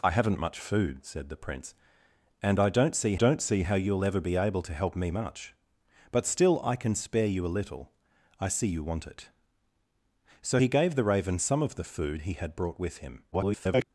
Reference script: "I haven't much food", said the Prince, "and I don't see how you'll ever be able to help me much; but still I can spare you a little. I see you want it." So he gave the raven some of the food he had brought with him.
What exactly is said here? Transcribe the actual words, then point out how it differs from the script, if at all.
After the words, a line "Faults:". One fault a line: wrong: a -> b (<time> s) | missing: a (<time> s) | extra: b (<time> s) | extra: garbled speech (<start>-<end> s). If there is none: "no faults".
"I haven't much food", said the Prince, "and I don't see don't see how you'll ever be able to help me much; but still I can spare you a little. I see you want it." So he gave the raven some of the food he had brought with him. [garbled]
Faults:
extra: don't see (3.1 s)
extra: garbled speech (13.3-13.8 s)